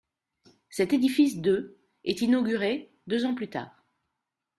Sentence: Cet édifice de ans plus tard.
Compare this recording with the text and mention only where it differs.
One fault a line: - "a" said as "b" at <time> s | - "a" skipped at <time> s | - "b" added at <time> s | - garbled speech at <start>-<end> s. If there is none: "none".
- "est inauguré deux" added at 2.1 s